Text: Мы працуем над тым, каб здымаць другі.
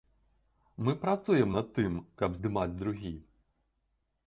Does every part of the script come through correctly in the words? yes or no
yes